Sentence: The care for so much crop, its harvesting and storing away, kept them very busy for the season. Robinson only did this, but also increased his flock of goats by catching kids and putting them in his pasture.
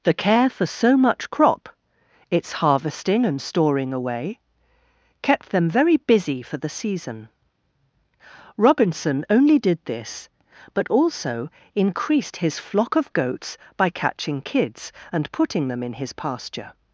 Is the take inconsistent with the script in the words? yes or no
no